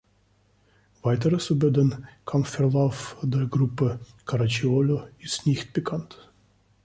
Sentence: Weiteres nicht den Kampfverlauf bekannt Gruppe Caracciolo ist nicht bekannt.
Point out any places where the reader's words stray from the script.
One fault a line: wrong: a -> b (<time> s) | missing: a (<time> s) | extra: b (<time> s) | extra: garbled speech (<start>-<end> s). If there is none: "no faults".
wrong: nicht -> über (1.5 s)
wrong: bekannt -> der (3.2 s)